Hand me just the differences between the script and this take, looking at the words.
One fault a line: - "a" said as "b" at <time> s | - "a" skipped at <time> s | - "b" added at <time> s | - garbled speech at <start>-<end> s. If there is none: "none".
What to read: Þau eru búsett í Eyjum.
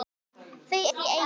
- "eru búsett" skipped at 0.8 s